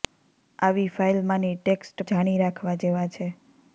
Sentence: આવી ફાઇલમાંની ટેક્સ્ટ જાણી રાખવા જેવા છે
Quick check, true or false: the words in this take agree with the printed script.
true